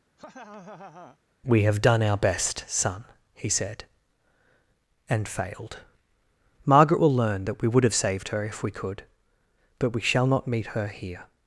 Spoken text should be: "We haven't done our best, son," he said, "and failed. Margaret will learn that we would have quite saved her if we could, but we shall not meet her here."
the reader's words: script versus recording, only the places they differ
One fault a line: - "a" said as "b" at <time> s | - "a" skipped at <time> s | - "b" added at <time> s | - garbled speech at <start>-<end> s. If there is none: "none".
- "haven't" said as "have" at 1.6 s
- "quite" skipped at 7.9 s